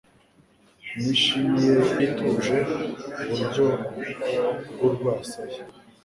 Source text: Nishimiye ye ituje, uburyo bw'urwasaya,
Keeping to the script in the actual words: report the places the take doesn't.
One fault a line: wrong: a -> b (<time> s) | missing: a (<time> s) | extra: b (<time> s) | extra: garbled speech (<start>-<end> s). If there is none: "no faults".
no faults